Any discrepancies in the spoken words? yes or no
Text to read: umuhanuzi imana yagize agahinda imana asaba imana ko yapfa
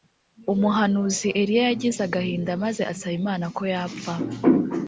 yes